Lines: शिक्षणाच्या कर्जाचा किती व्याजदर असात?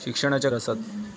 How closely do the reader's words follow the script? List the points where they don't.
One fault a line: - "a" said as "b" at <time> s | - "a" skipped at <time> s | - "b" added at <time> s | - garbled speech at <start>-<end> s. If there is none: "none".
- "कर्जाचा किती व्याजदर" skipped at 0.5 s